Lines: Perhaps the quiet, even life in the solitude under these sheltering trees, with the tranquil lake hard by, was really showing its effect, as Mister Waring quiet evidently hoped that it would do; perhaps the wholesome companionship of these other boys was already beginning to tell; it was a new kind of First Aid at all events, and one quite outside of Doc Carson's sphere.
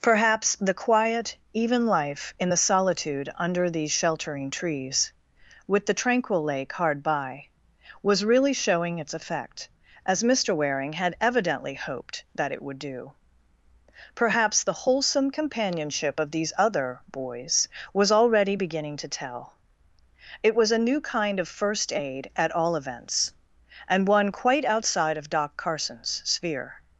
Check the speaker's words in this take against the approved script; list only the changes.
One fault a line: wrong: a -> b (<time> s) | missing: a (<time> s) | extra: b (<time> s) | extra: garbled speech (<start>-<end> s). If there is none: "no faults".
wrong: quiet -> had (10.9 s)